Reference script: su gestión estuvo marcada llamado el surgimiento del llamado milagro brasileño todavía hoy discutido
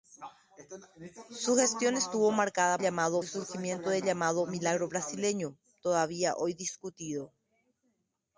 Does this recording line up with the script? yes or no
yes